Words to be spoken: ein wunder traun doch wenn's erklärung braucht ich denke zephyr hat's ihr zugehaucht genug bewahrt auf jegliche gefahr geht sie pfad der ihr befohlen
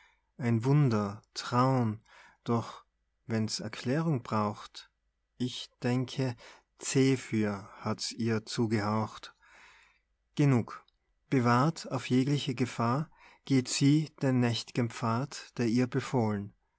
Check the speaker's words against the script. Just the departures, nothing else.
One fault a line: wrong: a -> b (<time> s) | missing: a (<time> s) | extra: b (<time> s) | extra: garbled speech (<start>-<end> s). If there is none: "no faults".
extra: den nächt'gen (14.2 s)